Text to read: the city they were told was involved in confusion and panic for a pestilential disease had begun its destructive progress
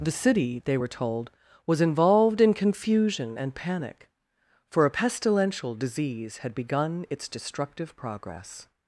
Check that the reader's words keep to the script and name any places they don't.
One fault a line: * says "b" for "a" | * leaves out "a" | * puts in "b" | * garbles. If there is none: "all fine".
all fine